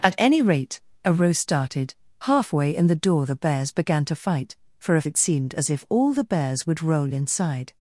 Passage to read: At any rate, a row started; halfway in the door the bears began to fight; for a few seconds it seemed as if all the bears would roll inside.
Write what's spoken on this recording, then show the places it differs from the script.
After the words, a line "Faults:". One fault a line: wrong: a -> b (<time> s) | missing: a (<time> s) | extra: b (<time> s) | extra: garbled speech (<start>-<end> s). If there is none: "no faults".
At any rate, a row started; halfway in the door the bears began to fight; for a it seemed as if all the bears would roll inside.
Faults:
missing: few seconds (5.1 s)